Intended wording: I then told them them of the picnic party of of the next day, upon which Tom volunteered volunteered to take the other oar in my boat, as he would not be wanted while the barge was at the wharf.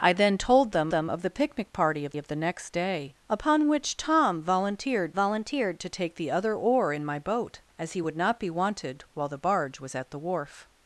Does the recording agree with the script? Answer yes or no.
yes